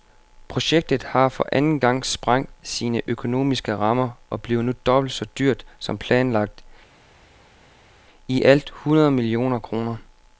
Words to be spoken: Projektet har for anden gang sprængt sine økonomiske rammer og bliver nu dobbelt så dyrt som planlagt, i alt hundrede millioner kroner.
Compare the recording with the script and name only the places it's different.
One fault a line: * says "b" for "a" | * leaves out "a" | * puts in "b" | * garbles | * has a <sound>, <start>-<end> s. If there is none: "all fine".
all fine